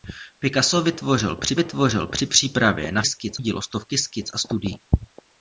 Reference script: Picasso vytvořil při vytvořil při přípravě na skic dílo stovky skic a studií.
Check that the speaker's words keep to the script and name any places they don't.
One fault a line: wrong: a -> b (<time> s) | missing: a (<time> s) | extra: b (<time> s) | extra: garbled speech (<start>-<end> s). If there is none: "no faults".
no faults